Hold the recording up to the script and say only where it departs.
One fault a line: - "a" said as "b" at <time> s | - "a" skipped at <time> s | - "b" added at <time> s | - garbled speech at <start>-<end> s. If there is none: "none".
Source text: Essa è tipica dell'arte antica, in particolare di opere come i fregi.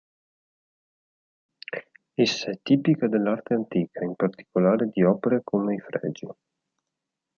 none